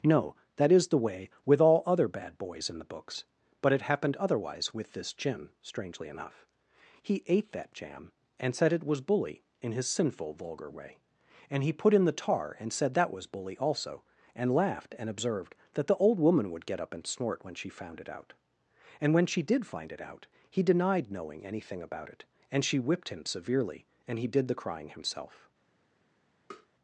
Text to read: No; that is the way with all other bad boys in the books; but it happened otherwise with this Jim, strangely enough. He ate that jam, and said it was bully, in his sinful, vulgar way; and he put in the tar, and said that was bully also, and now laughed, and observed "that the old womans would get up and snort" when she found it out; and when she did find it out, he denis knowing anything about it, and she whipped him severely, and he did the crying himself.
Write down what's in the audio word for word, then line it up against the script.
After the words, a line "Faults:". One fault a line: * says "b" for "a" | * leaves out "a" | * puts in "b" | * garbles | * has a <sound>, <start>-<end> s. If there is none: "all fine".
No; that is the way with all other bad boys in the books; but it happened otherwise with this Jim, strangely enough. He ate that jam, and said it was bully, in his sinful, vulgar way; and he put in the tar, and said that was bully also, and laughed, and observed "that the old woman would get up and snort" when she found it out; and when she did find it out, he denied knowing anything about it, and she whipped him severely, and he did the crying himself.
Faults:
* leaves out "now"
* says "woman" for "womans"
* says "denied" for "denis"
* has a tap, 26.5-26.7 s